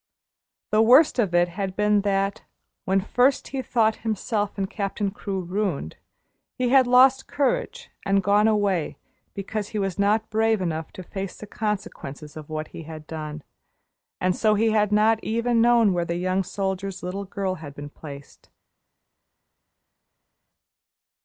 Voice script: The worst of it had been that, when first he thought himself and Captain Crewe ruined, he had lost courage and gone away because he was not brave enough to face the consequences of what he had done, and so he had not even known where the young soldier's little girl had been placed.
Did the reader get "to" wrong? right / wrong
right